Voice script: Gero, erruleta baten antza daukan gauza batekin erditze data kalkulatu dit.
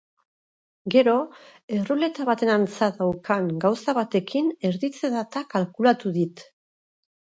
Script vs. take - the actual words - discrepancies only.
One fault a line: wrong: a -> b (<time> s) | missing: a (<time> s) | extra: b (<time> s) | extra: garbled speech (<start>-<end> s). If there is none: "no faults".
no faults